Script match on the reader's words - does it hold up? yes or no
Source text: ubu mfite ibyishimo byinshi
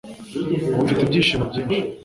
yes